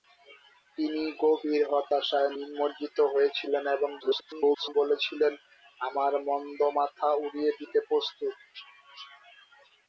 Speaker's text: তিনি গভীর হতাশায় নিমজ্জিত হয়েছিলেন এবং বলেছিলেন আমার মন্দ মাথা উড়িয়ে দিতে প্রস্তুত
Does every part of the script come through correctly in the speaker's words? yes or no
no